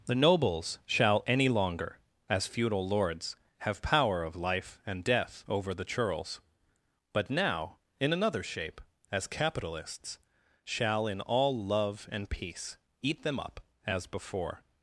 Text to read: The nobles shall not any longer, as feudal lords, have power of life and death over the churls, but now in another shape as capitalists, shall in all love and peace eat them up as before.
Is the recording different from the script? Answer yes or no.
yes